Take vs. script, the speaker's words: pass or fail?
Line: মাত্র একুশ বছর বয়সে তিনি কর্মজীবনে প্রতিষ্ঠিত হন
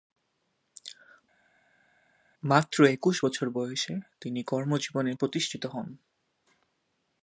pass